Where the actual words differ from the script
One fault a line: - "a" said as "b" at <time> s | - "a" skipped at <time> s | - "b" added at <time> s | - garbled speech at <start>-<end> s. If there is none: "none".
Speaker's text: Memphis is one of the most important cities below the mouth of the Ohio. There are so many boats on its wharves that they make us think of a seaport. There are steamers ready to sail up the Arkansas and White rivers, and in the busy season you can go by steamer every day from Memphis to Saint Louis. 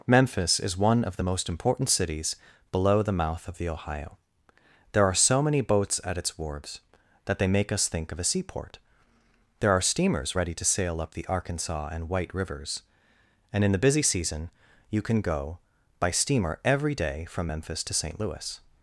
- "on" said as "at" at 6.0 s